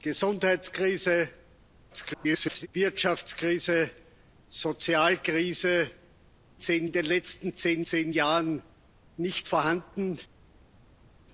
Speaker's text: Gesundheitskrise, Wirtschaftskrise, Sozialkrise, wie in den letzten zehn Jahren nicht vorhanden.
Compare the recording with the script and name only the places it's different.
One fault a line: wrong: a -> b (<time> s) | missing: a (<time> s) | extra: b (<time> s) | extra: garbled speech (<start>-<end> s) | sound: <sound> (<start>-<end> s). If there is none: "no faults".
extra: garbled speech (1.9-2.7 s)
wrong: wie -> zehn (6.6 s)
extra: zehn (7.8 s)